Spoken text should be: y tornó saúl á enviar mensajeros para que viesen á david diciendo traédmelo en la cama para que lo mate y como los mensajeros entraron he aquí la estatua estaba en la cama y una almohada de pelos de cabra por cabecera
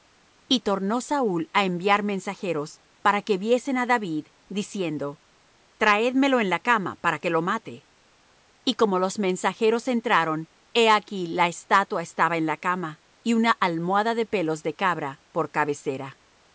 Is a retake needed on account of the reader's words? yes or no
no